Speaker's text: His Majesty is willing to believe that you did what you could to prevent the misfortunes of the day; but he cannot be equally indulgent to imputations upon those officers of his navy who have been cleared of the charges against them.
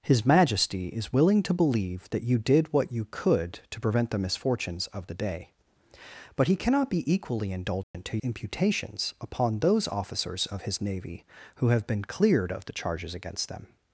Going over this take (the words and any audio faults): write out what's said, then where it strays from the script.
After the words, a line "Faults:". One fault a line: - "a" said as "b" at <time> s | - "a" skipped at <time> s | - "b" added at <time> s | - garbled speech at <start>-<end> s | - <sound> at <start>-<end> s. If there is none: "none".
His Majesty is willing to believe that you did what you could to prevent the misfortunes of the day; but he cannot be equally indulgent to imputations upon those officers of his navy who have been cleared of the charges against them.
Faults:
- dropout at 7.8-7.9 s